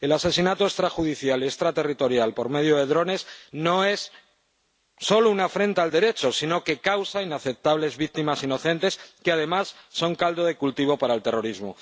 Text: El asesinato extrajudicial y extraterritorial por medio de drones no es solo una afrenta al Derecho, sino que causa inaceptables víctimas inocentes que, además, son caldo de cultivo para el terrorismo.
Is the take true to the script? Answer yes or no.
yes